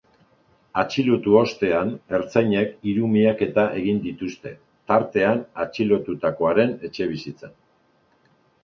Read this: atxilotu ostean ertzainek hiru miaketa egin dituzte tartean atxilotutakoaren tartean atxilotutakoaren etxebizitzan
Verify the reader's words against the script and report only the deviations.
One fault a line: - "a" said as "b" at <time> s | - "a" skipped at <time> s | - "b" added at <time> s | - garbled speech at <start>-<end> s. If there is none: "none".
- "tartean atxilotutakoaren" skipped at 6.8 s